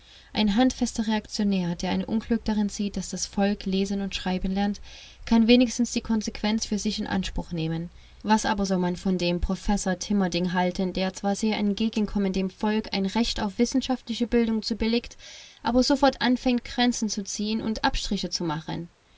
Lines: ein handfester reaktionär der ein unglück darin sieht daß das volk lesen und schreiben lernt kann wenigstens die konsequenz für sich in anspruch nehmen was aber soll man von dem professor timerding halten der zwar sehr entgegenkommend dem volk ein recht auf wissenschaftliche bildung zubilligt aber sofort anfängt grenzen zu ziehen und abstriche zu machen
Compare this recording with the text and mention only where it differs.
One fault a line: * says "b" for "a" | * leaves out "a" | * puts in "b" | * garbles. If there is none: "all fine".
all fine